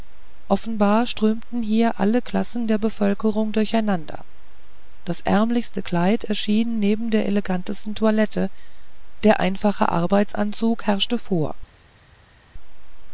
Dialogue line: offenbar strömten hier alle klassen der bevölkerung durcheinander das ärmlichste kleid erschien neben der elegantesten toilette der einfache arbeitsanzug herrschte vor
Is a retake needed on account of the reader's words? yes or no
no